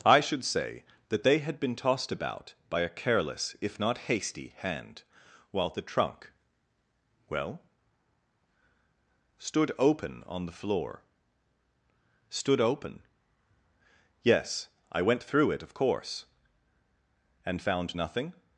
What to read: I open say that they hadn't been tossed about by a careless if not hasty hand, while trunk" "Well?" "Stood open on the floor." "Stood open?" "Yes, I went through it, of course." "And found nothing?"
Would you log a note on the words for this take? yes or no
yes